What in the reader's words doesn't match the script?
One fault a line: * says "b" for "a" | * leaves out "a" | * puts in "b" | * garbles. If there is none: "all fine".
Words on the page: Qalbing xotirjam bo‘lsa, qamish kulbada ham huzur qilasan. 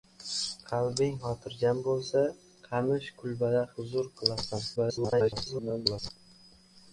* leaves out "ham"
* garbles